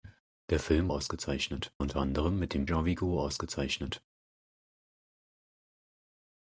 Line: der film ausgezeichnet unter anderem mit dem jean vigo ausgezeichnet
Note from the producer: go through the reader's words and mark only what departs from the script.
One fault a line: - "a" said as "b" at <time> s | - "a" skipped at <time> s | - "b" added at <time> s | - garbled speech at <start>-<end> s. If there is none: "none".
none